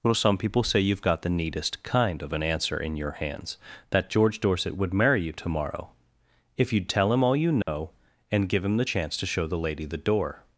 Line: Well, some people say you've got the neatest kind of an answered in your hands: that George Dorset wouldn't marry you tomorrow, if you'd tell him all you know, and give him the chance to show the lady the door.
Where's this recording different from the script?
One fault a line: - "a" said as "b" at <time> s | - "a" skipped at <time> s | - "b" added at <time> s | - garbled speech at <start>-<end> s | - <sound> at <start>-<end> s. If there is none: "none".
- "answered" said as "answer" at 2.4 s
- "wouldn't" said as "would" at 4.8 s
- dropout at 7.6-7.7 s